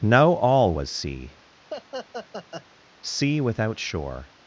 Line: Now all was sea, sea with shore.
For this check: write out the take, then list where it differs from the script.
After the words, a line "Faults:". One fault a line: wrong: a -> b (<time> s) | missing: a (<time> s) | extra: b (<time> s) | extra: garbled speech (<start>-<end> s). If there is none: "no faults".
Now all was sea, sea without shore.
Faults:
wrong: with -> without (3.4 s)